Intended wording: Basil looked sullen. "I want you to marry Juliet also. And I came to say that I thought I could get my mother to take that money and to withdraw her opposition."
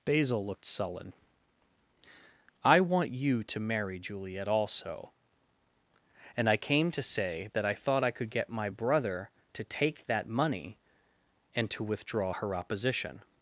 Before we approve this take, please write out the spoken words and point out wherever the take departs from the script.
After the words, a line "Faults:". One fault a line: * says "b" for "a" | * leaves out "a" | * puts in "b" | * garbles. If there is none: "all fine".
Basil looked sullen. "I want you to marry Juliet also. And I came to say that I thought I could get my brother to take that money and to withdraw her opposition."
Faults:
* says "brother" for "mother"